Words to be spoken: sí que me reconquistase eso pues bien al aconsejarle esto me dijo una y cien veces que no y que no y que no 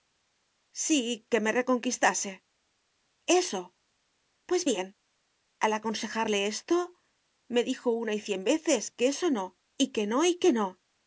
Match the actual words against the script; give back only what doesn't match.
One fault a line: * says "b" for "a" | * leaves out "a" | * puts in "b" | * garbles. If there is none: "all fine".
* puts in "eso"